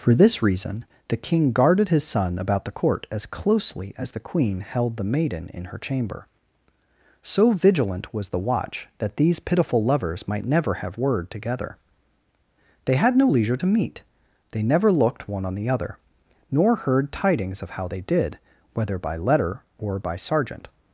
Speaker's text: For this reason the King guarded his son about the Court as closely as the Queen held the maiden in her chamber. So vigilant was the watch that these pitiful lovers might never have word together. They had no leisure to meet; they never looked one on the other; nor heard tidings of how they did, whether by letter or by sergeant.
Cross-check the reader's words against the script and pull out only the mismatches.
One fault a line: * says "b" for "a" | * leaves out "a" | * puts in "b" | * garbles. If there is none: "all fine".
all fine